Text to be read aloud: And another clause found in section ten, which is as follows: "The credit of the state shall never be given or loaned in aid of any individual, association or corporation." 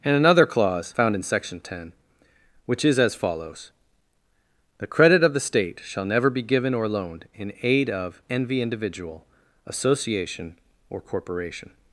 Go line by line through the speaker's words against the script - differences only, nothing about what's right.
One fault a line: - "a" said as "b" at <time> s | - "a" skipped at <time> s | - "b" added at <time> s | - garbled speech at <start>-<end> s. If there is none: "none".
- "any" said as "envy" at 8.3 s